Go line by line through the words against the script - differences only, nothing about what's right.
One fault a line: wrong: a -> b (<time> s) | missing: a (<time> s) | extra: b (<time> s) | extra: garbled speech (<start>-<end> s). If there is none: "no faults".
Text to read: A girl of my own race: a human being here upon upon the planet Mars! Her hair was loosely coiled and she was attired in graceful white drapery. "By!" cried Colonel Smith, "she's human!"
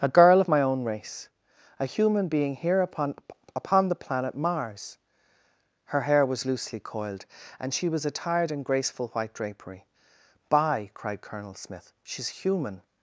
no faults